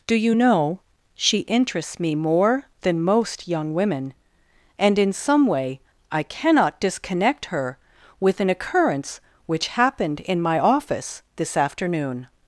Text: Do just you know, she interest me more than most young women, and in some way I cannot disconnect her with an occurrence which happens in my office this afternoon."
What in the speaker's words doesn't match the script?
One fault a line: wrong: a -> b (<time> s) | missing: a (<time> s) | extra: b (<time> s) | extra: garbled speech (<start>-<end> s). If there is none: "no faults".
missing: just (0.1 s)
wrong: interest -> interests (1.4 s)
wrong: happens -> happened (9.7 s)